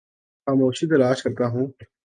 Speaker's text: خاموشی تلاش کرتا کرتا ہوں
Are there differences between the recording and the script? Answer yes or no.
yes